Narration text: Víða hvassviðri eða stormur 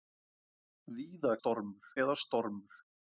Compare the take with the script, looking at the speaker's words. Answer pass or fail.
fail